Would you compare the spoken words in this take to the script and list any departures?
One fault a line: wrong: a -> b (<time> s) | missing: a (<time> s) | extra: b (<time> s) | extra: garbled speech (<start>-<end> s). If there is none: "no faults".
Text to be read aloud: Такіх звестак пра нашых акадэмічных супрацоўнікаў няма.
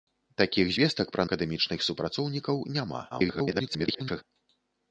missing: нашых (1.2 s)
extra: garbled speech (3.1-4.2 s)